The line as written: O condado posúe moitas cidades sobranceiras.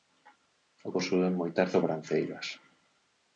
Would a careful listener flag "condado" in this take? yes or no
yes